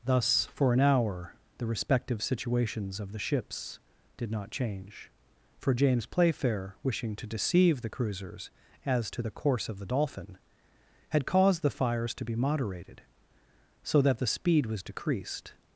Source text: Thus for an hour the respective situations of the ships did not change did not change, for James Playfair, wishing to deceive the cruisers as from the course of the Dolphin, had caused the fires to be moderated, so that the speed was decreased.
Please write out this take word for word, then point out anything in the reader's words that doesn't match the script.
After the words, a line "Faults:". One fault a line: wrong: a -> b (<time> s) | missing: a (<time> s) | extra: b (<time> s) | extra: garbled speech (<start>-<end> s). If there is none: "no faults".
Thus for an hour the respective situations of the ships did not change, for James Playfair, wishing to deceive the cruisers as to the course of the Dolphin, had caused the fires to be moderated, so that the speed was decreased.
Faults:
missing: did not change (5.1 s)
wrong: from -> to (9.1 s)